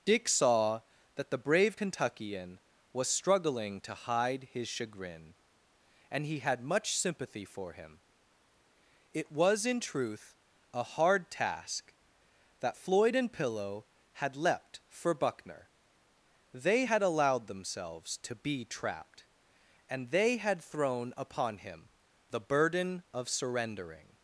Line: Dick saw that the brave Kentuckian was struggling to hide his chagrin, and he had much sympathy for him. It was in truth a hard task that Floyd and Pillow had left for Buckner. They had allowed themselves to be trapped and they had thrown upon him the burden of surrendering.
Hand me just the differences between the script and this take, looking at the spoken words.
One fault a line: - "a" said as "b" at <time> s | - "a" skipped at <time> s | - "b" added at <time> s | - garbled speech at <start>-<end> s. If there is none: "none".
- "left" said as "leapt" at 14.3 s